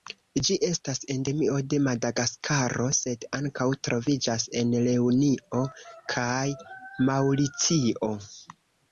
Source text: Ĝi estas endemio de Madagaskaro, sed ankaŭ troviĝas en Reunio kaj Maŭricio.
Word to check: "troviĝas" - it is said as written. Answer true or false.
true